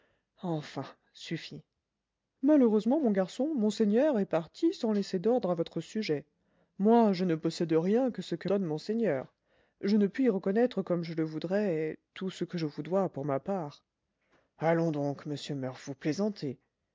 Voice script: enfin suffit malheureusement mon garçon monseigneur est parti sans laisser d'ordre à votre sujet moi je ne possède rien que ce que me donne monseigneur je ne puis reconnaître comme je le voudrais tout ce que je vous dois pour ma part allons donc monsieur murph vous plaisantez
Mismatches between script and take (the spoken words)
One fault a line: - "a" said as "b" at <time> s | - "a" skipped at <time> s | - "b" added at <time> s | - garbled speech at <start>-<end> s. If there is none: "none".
- "me" skipped at 8.5 s